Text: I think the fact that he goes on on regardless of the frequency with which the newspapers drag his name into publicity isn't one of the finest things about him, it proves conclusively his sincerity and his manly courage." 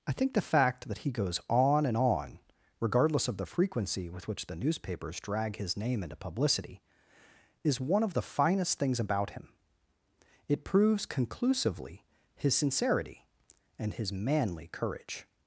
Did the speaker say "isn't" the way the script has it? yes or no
no